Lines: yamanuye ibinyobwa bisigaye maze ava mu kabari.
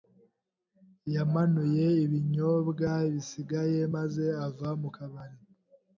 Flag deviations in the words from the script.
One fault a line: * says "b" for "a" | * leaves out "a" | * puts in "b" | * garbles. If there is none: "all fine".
all fine